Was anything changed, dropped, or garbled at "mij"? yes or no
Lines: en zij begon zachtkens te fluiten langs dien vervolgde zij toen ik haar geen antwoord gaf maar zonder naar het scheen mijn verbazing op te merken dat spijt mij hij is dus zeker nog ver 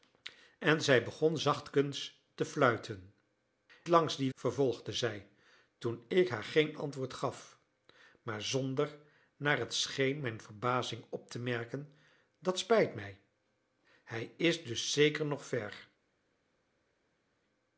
no